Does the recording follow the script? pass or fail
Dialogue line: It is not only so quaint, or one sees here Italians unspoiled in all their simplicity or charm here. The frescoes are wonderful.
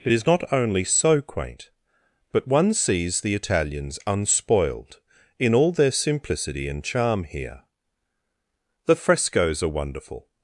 fail